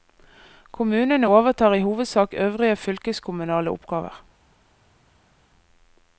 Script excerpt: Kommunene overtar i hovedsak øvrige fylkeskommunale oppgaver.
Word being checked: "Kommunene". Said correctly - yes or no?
yes